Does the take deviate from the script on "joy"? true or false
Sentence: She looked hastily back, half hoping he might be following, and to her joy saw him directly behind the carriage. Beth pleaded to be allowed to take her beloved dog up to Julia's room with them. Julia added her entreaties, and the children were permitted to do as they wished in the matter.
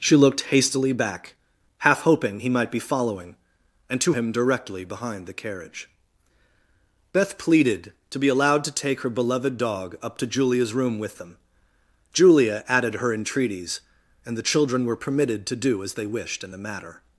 true